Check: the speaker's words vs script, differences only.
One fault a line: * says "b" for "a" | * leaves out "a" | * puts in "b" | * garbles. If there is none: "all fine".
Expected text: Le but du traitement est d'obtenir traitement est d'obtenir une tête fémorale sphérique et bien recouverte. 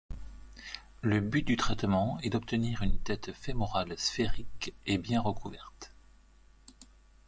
* leaves out "traitement est d'obtenir"